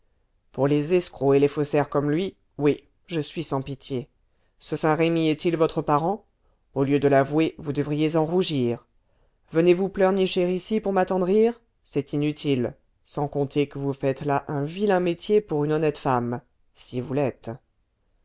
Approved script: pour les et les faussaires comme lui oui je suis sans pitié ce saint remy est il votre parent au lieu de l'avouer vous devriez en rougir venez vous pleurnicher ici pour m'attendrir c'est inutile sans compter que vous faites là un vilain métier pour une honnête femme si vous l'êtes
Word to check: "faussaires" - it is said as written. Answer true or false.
true